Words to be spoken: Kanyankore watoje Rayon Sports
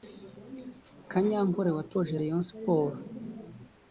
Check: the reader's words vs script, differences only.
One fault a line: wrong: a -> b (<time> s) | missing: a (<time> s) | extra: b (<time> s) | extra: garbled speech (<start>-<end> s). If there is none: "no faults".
no faults